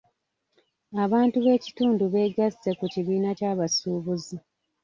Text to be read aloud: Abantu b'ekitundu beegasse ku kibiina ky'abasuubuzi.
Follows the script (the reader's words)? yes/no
yes